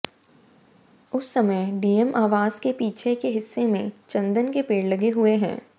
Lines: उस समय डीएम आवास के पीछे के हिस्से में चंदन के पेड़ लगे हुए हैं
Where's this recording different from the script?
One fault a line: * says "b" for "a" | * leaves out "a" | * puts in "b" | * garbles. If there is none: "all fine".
all fine